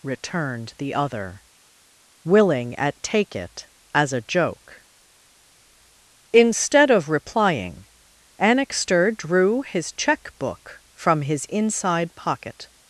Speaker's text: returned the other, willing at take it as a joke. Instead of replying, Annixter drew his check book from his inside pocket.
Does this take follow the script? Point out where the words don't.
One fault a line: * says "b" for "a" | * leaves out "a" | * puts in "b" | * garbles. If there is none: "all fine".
all fine